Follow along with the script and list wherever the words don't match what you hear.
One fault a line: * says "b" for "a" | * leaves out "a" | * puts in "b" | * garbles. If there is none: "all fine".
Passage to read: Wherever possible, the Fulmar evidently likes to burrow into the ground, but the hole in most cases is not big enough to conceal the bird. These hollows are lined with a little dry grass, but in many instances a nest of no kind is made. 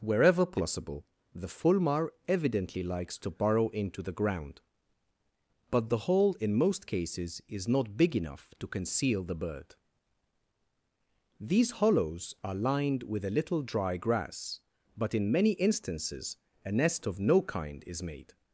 all fine